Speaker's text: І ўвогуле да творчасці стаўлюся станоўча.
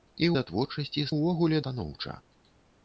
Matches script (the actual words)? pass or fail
fail